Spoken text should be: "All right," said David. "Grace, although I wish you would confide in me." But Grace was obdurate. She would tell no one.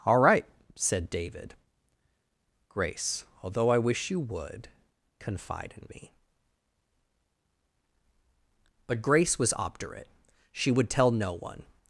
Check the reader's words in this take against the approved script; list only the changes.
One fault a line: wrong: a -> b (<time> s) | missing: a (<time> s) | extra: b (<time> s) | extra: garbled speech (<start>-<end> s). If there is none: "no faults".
no faults